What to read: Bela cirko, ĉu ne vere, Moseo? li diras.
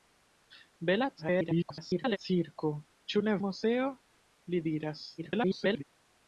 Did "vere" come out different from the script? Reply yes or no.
yes